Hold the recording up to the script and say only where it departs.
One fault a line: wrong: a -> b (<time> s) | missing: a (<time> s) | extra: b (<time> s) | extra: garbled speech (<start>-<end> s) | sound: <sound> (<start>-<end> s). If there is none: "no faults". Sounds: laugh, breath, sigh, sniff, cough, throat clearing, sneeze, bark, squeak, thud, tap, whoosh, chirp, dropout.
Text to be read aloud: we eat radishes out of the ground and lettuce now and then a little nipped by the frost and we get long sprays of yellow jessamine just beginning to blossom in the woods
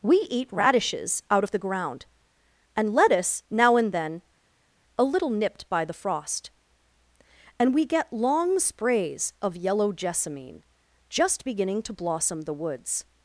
missing: in (12.4 s)